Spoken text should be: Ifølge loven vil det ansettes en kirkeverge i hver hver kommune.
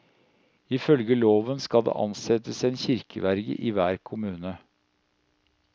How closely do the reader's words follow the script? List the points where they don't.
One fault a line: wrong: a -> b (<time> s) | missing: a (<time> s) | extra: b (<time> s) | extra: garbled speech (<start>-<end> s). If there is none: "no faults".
wrong: vil -> skal (1.6 s)
missing: hver (4.0 s)